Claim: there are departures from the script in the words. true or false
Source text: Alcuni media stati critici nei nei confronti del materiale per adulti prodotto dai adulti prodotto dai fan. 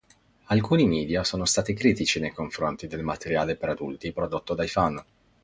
true